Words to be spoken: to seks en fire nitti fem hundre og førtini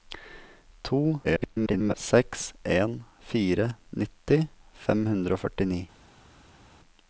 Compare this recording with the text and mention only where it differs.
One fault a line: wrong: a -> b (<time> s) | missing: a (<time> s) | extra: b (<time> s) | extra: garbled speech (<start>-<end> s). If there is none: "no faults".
extra: garbled speech (1.2-1.9 s)